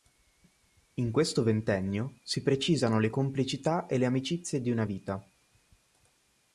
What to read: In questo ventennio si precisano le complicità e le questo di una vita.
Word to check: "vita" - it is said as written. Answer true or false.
true